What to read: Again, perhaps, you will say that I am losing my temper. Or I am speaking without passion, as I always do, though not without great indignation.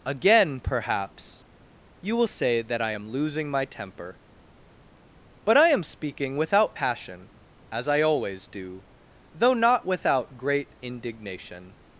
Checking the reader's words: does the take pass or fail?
fail